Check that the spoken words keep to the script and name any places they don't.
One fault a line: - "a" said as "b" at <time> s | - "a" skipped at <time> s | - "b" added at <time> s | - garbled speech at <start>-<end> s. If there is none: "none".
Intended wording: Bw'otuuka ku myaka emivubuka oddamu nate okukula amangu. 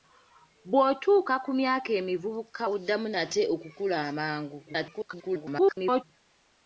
- garbled speech at 4.7-6.0 s